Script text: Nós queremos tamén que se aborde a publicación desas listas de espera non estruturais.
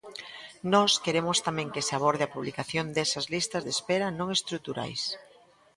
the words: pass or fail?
pass